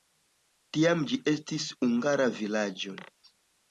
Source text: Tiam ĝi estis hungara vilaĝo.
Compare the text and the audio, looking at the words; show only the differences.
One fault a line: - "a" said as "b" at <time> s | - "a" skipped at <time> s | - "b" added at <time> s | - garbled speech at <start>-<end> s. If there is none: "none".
none